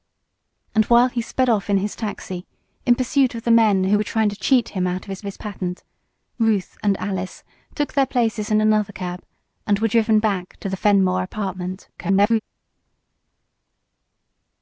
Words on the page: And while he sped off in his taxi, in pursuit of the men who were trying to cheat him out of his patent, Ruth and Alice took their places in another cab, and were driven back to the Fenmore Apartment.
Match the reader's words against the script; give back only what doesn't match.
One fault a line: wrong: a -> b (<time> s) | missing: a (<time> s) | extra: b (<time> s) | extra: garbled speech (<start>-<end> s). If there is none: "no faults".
extra: his (5.2 s)
extra: garbled speech (12.0-12.4 s)